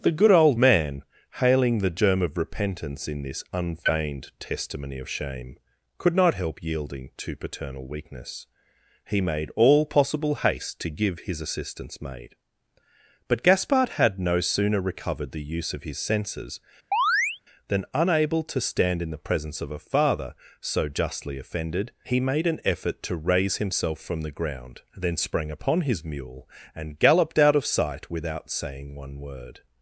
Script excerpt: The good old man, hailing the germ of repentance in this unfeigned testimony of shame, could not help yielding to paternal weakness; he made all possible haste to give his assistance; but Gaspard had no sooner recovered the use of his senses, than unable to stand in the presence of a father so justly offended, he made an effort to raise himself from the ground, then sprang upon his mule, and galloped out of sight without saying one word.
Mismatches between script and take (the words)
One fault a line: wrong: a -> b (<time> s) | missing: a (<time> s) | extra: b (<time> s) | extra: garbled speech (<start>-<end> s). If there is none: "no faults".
extra: maid (12.0 s)